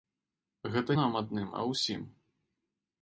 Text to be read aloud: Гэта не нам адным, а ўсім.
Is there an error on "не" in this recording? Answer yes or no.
yes